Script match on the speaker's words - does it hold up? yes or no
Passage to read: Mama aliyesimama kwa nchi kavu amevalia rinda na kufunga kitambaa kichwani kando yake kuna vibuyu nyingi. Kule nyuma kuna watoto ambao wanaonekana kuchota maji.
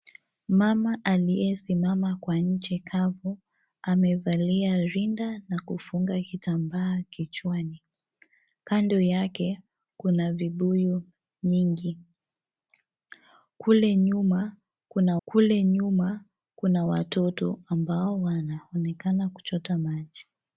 no